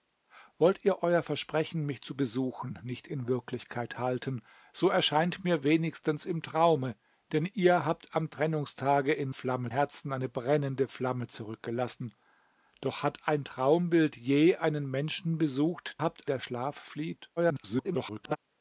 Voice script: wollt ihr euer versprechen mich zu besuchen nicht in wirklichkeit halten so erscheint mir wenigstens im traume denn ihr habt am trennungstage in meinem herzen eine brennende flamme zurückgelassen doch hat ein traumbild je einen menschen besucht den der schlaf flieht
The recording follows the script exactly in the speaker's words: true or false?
false